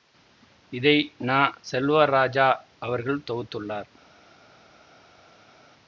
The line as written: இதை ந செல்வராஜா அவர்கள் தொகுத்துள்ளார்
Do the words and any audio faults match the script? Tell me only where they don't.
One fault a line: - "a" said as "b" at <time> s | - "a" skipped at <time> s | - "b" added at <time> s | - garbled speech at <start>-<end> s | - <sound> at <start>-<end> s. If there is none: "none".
none